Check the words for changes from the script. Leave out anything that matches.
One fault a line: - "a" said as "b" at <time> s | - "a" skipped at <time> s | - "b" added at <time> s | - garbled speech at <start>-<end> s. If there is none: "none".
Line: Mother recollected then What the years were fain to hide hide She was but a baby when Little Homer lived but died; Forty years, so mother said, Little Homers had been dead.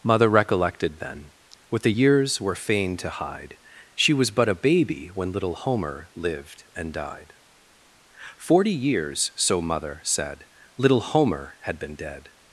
- "hide" skipped at 3.6 s
- "but" said as "and" at 6.7 s
- "Homers" said as "Homer" at 11.0 s